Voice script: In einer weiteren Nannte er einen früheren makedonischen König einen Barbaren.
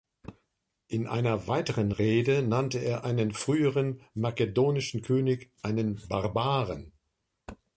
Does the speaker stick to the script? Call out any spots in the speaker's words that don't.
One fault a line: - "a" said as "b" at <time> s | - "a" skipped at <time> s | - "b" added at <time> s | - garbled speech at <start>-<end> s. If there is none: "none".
- "Rede" added at 1.9 s